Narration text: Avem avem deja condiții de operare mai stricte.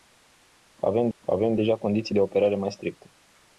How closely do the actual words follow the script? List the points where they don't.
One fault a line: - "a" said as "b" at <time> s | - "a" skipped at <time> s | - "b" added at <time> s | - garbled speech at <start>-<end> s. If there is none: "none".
none